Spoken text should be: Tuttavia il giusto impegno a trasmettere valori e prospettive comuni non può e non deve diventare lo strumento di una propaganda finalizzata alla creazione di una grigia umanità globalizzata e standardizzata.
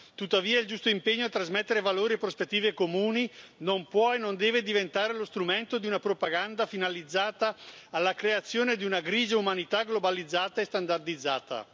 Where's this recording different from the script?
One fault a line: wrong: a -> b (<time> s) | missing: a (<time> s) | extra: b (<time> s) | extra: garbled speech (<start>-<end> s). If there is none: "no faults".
no faults